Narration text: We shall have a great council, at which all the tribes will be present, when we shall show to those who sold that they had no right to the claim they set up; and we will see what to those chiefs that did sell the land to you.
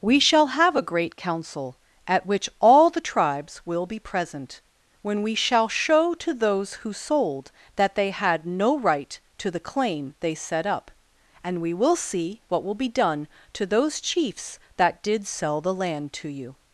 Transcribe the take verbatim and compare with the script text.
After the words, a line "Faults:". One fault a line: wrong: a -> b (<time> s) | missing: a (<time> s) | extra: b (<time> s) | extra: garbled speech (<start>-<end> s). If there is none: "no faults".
We shall have a great council, at which all the tribes will be present, when we shall show to those who sold that they had no right to the claim they set up; and we will see what will be done to those chiefs that did sell the land to you.
Faults:
extra: will be done (12.6 s)